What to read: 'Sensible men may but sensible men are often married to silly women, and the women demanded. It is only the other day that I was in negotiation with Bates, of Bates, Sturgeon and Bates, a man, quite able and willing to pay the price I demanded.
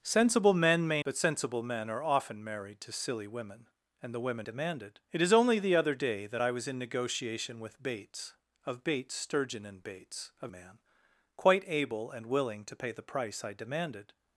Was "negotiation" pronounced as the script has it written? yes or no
yes